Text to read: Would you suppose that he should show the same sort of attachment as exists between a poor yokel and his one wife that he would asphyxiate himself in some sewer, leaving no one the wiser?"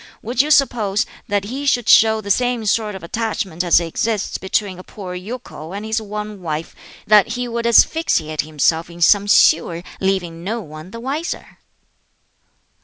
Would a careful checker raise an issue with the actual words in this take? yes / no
no